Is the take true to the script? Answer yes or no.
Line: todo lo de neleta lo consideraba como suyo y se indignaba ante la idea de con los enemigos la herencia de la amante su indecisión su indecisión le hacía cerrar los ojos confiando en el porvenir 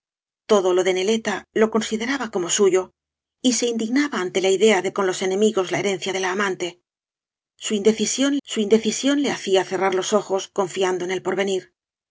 yes